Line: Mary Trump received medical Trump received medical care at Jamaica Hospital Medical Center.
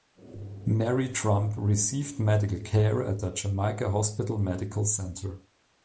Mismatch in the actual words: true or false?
true